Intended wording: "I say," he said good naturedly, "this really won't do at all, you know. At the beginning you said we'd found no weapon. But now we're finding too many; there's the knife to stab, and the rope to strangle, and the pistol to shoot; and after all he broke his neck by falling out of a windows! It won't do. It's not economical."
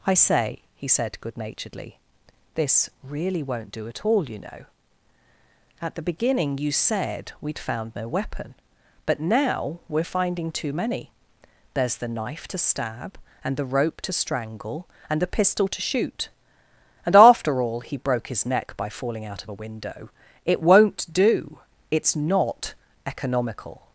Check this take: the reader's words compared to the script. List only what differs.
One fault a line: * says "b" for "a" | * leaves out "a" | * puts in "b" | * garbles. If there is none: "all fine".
* says "window" for "windows"